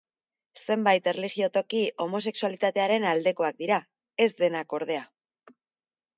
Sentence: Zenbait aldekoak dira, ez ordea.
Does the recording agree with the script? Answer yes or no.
no